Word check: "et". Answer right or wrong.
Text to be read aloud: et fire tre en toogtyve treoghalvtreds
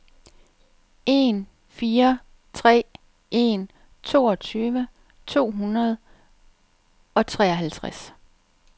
wrong